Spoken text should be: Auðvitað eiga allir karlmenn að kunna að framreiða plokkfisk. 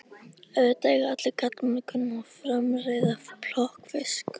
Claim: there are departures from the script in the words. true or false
false